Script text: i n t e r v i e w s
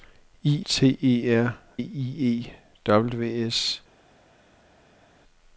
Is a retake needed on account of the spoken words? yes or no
yes